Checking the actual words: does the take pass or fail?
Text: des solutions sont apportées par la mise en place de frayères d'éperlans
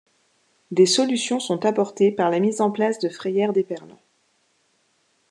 pass